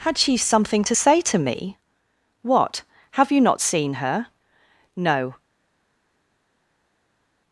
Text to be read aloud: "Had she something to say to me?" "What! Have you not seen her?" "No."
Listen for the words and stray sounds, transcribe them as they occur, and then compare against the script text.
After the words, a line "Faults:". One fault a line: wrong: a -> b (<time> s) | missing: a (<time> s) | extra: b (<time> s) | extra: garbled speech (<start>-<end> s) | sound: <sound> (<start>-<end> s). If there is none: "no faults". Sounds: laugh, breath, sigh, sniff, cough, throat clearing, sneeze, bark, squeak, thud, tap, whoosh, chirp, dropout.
"Had she something to say to me?" "What! Have you not seen her?" "No."
Faults:
no faults